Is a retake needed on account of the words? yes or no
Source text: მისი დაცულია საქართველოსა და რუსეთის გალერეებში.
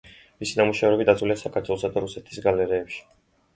yes